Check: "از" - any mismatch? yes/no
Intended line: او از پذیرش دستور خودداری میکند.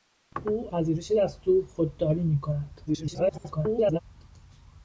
yes